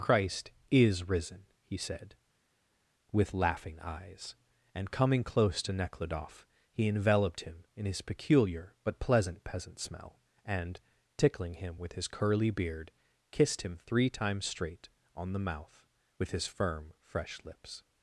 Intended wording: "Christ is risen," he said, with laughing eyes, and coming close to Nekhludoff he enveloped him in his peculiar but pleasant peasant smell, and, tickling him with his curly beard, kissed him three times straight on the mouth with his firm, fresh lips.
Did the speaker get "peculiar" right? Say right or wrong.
right